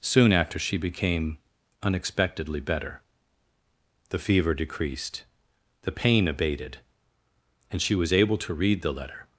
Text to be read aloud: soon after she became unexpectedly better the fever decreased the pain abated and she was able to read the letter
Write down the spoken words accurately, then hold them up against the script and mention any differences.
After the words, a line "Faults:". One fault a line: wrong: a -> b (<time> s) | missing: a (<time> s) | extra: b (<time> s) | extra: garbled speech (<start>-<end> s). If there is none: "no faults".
soon after she became unexpectedly better the fever decreased the pain abated and she was able to read the letter
Faults:
no faults